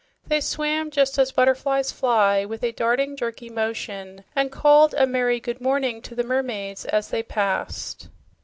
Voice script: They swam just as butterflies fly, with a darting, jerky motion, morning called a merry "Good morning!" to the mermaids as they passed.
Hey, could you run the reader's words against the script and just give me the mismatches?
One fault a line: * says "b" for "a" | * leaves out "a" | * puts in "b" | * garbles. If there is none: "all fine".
* says "and" for "morning"